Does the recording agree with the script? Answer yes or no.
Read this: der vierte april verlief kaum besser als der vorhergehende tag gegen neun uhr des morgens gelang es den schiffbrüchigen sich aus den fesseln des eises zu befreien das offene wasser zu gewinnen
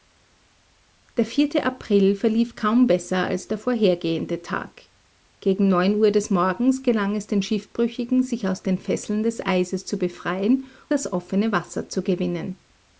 yes